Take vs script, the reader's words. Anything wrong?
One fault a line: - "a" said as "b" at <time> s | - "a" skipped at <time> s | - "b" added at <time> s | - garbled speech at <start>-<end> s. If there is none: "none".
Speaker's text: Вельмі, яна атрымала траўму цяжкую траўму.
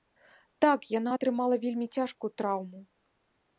- "Вельмі" said as "Так" at 0.7 s
- "траўму" said as "вельмі" at 1.6 s